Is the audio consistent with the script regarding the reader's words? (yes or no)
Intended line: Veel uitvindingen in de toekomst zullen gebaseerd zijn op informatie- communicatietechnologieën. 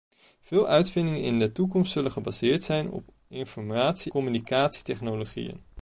yes